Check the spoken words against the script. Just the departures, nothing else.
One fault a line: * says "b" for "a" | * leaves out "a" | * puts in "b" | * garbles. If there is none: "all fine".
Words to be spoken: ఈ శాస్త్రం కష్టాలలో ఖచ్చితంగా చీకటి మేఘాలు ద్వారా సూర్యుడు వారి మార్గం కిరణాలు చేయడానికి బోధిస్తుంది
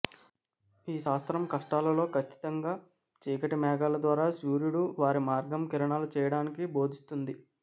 all fine